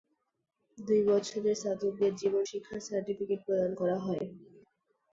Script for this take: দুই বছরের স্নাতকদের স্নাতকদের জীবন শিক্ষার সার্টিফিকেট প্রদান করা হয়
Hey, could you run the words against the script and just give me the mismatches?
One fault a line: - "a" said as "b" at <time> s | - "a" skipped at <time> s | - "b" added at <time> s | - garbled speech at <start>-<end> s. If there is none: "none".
- "স্নাতকদের" skipped at 2.1 s